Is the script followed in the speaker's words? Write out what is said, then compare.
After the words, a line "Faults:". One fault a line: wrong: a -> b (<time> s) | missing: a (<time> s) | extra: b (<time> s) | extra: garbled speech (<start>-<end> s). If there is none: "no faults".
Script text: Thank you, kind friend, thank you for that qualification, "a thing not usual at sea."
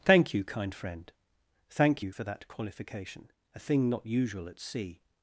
Thank you, kind friend, thank you for that qualification, "a thing not usual at sea."
Faults:
no faults